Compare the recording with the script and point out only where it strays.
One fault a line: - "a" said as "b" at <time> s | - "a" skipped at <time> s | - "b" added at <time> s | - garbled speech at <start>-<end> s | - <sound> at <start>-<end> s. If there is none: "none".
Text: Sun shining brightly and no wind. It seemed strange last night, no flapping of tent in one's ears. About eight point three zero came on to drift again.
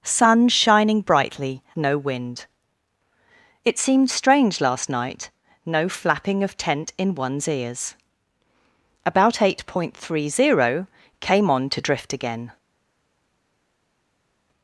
- "and" skipped at 1.6 s